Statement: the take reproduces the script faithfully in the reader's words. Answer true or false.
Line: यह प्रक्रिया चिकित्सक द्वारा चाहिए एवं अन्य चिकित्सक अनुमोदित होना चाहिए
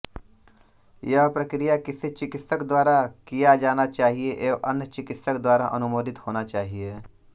false